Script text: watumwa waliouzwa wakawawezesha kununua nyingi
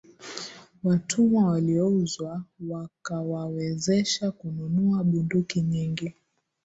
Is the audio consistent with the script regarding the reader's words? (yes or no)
no